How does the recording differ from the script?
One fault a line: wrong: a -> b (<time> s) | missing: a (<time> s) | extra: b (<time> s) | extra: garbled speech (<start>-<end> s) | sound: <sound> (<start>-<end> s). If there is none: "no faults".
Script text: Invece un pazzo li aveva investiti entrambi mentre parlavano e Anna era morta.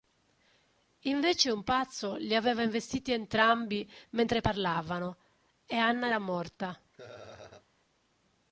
sound: laugh (6.9-7.7 s)